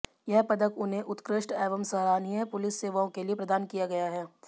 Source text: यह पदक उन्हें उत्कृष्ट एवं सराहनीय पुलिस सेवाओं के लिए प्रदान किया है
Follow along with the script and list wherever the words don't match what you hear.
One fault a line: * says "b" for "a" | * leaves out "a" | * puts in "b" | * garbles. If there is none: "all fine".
* puts in "गया"